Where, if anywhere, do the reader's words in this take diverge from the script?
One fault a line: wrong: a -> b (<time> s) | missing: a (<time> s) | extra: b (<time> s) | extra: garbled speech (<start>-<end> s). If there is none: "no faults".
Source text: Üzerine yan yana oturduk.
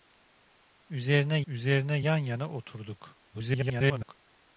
extra: üzerine (1.5 s)
extra: garbled speech (3.3-4.1 s)